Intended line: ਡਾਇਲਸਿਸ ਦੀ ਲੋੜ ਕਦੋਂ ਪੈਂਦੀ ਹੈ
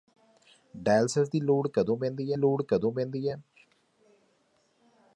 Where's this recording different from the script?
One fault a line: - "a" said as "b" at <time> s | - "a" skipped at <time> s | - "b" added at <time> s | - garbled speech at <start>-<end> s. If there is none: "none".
- "ਲੋੜ ਕਦੋਂ ਪੈਂਦੀ" added at 2.3 s